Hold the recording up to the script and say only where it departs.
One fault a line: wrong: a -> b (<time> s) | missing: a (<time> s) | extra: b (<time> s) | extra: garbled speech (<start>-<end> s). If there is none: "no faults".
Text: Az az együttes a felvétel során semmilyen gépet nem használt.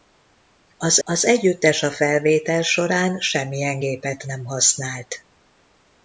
no faults